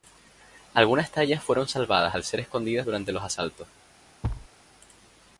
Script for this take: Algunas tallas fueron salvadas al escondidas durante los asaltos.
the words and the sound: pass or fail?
fail